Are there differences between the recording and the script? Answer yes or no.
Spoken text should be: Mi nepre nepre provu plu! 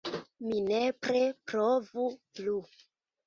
yes